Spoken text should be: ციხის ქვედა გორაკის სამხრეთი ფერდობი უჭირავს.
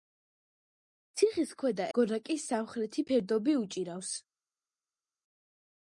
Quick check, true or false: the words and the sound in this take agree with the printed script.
true